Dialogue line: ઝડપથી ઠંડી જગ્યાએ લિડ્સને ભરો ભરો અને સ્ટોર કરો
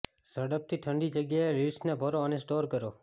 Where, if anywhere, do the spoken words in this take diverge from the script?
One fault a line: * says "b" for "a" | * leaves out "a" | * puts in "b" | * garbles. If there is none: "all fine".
* leaves out "ભરો"